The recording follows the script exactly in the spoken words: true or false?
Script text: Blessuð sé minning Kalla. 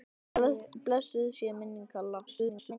false